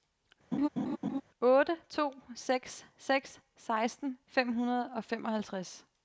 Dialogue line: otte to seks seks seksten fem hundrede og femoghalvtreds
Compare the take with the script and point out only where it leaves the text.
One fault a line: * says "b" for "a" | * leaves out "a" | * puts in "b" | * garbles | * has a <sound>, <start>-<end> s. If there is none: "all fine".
* has a laugh, 0.5-1.2 s